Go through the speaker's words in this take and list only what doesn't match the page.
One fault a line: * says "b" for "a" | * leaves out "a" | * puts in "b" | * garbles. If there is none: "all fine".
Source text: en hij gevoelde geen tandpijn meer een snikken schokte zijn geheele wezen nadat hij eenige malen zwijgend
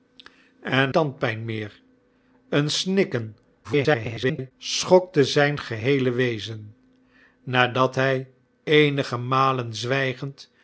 * leaves out "hij gevoelde geen"
* garbles